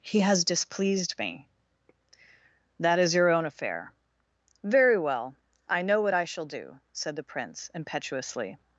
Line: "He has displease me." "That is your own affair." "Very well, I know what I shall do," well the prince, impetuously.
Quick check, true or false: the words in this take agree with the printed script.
false